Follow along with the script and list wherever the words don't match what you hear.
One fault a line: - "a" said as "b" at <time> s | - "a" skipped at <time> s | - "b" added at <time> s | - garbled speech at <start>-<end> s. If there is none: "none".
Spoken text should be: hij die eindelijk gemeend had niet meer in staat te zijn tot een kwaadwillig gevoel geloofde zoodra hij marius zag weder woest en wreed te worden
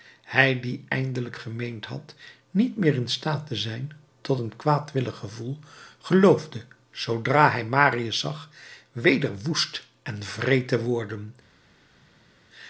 none